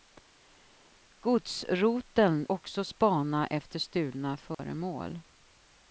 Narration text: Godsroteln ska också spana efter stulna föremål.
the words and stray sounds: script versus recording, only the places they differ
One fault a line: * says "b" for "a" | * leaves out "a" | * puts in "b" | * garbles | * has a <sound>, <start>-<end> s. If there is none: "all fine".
* leaves out "ska"
* has a dropout, 4.5-4.6 s